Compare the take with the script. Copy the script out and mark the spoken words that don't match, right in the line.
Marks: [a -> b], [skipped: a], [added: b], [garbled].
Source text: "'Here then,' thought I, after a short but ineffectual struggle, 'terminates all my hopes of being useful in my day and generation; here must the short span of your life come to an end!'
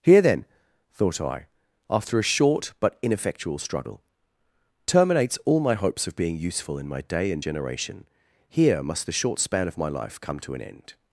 "'Here then,' thought I, after a short but ineffectual struggle, 'terminates all my hopes of being useful in my day and generation; here must the short span of [your -> my] life come to an end!'